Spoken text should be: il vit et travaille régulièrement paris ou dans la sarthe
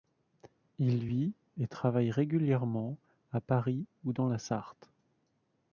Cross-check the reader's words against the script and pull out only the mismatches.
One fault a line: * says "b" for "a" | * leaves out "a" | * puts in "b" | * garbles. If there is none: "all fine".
* puts in "à"